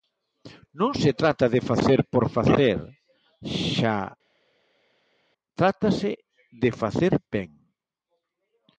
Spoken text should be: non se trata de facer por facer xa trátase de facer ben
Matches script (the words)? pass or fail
pass